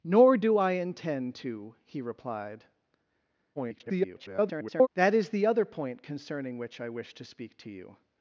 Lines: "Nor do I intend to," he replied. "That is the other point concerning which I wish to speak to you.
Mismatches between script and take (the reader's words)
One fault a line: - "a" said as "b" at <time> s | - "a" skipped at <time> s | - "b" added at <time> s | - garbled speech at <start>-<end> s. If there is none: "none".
- garbled speech at 3.6-4.9 s